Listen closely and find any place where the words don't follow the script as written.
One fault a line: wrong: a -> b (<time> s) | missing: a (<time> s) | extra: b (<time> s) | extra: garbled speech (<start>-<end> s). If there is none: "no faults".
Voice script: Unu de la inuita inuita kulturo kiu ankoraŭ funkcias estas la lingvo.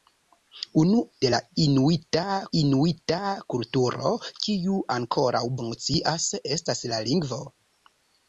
no faults